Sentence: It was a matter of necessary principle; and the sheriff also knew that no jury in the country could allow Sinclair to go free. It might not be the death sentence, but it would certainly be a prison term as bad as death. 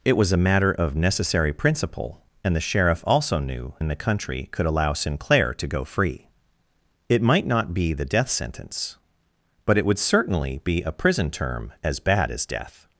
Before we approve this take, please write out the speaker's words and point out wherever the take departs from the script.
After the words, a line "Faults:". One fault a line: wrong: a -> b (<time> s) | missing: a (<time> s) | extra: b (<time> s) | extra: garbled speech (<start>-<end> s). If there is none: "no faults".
It was a matter of necessary principle; and the sheriff also knew in the country could allow Sinclair to go free. It might not be the death sentence, but it would certainly be a prison term as bad as death.
Faults:
missing: that no jury (3.7 s)